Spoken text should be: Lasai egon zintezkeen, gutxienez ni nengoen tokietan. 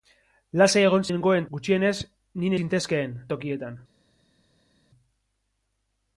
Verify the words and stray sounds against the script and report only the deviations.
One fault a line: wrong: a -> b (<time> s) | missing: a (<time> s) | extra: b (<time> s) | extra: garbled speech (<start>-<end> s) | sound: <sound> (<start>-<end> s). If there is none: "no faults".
wrong: zintezkeen -> nengoen (1.1 s)
wrong: nengoen -> zintezkeen (2.6 s)